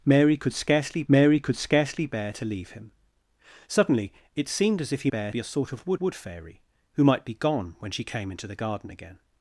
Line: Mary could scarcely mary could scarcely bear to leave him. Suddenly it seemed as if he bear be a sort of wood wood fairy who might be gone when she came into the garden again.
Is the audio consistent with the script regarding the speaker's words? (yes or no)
yes